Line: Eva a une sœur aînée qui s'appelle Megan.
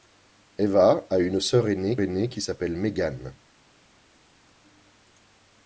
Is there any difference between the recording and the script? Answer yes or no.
yes